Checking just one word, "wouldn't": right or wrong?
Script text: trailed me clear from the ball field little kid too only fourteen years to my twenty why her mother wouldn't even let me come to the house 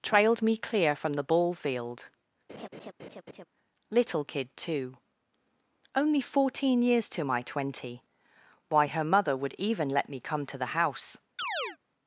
wrong